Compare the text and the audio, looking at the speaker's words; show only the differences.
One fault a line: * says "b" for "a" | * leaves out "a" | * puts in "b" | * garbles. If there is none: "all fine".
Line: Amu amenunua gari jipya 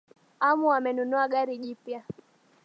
all fine